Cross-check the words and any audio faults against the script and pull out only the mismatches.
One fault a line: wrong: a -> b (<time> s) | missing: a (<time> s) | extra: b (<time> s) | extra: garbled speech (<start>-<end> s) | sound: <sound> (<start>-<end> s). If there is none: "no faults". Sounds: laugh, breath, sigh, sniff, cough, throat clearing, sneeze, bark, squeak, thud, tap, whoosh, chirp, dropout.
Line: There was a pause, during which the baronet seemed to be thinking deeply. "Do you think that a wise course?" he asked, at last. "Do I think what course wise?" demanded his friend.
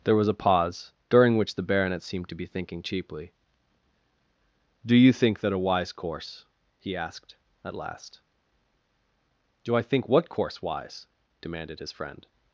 wrong: deeply -> cheaply (2.8 s)